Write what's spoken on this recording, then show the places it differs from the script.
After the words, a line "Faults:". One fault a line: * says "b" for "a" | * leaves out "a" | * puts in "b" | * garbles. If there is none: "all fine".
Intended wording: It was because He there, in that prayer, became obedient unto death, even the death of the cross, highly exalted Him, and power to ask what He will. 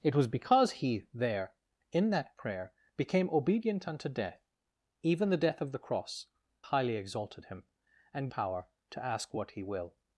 It was because He there, in that prayer, became obedient unto death, even the death of the cross, highly exalted Him, and power to ask what He will.
Faults:
all fine